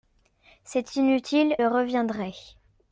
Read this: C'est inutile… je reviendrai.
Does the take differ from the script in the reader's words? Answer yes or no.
yes